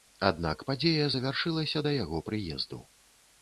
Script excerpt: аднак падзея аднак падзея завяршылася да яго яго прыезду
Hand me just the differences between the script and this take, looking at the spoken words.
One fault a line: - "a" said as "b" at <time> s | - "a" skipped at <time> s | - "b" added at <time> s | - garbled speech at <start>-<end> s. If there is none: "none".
- "аднак падзея" skipped at 1.1 s
- "яго" skipped at 2.2 s